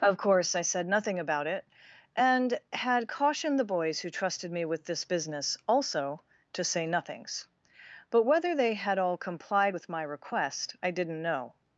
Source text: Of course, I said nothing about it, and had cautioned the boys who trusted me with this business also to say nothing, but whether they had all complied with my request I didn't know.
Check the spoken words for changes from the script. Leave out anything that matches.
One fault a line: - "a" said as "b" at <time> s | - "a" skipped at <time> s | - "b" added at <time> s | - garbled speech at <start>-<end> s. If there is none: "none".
- "nothing" said as "nothings" at 6.9 s